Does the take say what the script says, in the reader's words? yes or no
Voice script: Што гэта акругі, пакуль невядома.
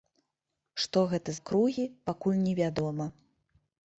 yes